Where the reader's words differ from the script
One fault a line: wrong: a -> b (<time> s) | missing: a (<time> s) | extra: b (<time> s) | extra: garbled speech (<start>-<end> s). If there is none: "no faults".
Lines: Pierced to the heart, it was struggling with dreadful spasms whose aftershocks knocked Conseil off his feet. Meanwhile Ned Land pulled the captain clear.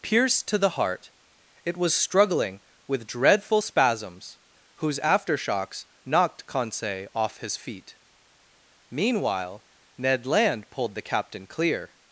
no faults